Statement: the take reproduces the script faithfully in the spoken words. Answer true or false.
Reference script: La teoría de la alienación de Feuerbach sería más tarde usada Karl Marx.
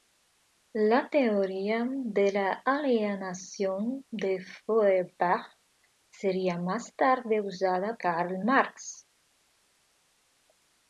true